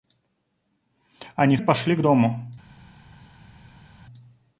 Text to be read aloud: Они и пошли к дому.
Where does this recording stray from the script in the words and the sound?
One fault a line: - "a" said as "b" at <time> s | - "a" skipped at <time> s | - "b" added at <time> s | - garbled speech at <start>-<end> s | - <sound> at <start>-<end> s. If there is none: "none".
none